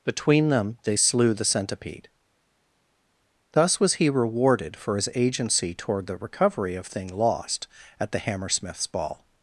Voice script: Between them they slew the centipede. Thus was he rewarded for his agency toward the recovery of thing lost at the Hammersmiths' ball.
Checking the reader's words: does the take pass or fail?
pass